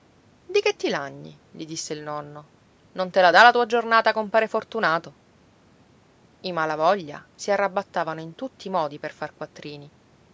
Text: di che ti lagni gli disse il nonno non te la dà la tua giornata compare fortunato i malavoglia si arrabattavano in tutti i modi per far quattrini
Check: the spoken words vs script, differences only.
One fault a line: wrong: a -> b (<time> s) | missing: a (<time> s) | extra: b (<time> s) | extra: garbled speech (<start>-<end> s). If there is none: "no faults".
no faults